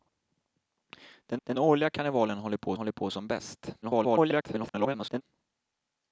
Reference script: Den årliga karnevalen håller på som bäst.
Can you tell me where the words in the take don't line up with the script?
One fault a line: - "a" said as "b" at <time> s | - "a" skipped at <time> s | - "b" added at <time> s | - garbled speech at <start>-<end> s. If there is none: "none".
- "den" added at 1.4 s
- "håller på" added at 2.7 s
- garbled speech at 3.8-5.2 s